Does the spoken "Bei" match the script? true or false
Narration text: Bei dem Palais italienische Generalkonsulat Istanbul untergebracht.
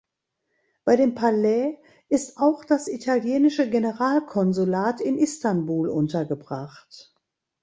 true